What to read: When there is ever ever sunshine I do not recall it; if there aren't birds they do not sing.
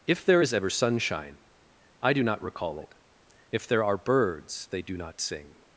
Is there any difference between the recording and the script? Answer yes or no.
yes